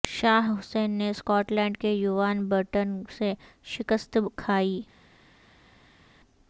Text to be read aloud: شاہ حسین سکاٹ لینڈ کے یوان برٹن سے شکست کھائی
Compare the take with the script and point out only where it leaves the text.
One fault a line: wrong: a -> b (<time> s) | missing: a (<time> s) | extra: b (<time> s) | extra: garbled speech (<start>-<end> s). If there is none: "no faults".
extra: نے (0.9 s)